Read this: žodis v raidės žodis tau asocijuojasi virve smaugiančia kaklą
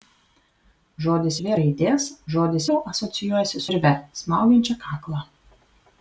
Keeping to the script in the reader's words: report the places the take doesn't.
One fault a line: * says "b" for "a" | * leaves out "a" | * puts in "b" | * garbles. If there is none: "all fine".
all fine